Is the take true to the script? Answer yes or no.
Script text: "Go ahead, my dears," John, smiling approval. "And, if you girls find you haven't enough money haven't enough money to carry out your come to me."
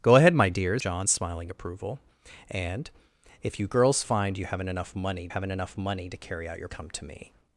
yes